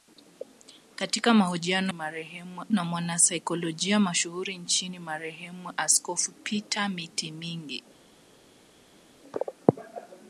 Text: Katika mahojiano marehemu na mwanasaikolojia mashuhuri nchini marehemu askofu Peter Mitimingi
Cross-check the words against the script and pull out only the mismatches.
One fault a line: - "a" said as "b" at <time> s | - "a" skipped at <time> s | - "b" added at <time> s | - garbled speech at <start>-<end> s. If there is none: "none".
none